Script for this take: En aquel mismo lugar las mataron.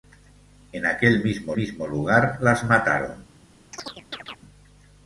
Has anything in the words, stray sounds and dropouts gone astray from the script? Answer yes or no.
yes